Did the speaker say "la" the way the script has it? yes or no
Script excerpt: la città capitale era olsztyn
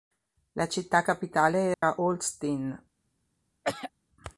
yes